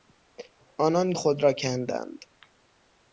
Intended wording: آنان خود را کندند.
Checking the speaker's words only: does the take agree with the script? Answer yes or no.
yes